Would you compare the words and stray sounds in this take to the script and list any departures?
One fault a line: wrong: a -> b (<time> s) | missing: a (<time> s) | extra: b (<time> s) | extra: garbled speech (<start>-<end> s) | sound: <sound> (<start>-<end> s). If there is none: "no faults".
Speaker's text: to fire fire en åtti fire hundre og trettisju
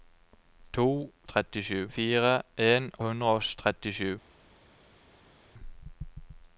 wrong: fire -> trettisju (1.3 s)
missing: åtti fire (2.9 s)